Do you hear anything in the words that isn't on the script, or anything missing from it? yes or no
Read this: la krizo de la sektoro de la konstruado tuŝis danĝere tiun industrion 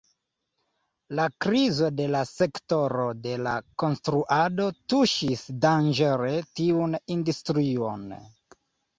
no